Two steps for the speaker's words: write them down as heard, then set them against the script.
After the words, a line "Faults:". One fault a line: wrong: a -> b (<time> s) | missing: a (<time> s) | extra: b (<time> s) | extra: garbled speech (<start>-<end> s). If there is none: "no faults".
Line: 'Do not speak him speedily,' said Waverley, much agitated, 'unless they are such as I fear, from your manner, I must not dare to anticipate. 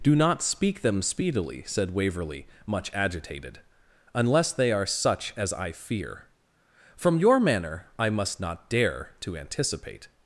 'Do not speak them speedily,' said Waverley, much agitated, 'unless they are such as I fear, from your manner, I must not dare to anticipate.
Faults:
wrong: him -> them (0.8 s)